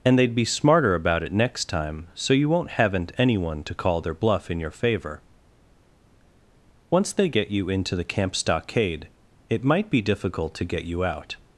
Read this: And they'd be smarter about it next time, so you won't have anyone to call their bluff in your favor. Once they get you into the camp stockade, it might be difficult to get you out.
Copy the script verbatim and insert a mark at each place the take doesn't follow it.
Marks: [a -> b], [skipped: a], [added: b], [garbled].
And they'd be smarter about it next time, so you won't [have -> haven't] anyone to call their bluff in your favor. Once they get you into the camp stockade, it might be difficult to get you out.